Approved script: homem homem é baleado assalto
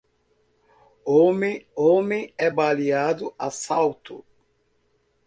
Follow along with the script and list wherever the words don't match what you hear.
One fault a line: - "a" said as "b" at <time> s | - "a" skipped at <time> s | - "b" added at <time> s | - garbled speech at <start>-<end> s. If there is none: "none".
none